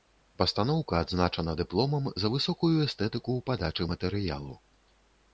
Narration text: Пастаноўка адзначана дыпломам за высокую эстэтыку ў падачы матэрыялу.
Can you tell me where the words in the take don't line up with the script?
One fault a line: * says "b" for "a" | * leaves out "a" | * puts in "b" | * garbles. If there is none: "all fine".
all fine